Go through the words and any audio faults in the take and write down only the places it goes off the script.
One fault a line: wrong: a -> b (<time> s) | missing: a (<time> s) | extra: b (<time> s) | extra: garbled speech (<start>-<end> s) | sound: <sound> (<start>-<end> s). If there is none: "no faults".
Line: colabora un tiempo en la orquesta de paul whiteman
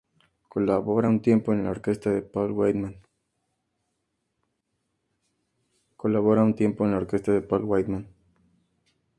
no faults